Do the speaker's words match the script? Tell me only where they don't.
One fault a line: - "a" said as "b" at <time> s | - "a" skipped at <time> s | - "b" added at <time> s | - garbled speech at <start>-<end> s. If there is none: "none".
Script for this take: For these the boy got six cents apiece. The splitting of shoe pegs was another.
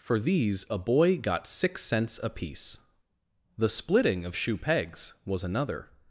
- "the" said as "a" at 0.7 s